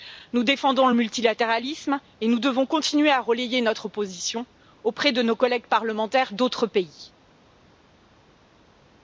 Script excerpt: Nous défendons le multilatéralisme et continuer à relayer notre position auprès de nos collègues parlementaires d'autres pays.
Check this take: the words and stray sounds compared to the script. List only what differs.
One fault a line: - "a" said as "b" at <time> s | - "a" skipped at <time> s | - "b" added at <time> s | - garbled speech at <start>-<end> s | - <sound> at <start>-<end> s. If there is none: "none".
- "nous devons" added at 2.3 s